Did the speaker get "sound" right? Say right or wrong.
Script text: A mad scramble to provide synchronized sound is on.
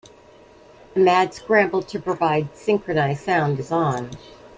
right